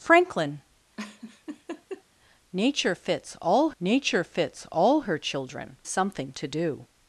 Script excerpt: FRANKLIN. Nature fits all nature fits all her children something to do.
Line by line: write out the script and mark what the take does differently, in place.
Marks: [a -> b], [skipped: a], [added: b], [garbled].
FRANKLIN. Nature fits all nature fits all her children something to do.